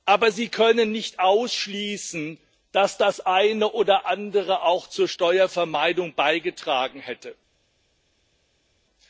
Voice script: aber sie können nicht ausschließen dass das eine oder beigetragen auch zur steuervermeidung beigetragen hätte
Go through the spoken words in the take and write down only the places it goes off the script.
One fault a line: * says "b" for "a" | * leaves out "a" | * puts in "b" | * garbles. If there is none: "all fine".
* says "andere" for "beigetragen"